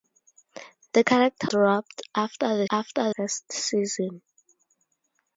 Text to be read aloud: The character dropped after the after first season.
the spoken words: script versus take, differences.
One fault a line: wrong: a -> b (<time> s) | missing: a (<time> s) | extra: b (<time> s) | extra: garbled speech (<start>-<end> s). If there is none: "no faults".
no faults